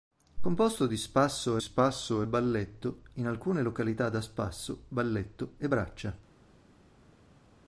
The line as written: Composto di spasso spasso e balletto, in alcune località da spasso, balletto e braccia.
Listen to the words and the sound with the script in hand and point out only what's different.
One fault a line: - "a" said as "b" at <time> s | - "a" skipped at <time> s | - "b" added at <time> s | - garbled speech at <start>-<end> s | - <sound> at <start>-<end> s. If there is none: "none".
none